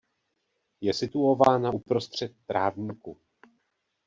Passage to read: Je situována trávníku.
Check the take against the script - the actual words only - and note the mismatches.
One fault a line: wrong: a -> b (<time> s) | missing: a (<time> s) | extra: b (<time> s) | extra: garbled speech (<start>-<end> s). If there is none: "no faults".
extra: uprostřed (1.7 s)